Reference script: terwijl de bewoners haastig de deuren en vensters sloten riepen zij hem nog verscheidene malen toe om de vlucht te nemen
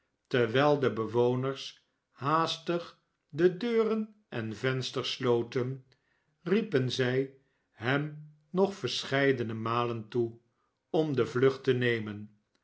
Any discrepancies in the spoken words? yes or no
no